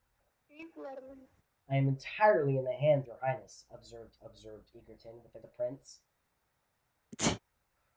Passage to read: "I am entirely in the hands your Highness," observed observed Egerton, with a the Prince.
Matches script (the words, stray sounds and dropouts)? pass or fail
fail